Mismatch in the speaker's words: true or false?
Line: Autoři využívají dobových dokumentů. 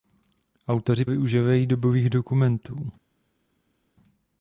false